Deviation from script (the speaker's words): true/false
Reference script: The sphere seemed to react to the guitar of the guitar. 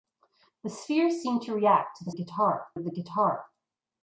false